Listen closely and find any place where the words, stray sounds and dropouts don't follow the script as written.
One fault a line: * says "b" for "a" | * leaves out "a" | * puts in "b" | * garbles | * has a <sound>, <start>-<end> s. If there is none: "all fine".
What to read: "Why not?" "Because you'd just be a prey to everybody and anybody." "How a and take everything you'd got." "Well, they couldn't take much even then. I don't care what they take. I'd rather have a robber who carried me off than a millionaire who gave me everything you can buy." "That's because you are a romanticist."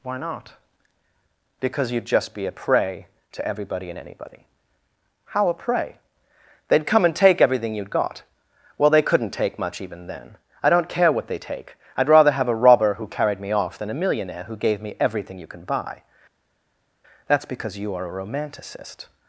* puts in "prey They'd come"